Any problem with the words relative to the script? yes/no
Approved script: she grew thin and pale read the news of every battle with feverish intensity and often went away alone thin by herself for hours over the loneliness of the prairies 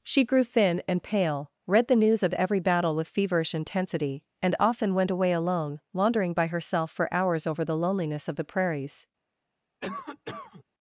yes